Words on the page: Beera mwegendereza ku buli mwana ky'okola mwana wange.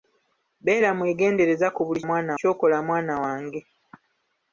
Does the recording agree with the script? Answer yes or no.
yes